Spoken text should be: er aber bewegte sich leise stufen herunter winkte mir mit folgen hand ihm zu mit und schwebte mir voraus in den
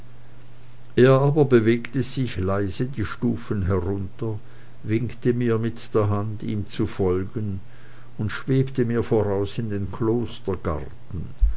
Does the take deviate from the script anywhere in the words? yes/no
yes